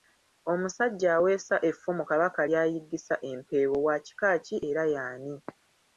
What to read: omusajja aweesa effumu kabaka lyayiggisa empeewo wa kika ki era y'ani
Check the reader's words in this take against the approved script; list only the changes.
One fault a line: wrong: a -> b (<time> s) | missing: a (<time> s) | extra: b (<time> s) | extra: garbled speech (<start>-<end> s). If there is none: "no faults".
no faults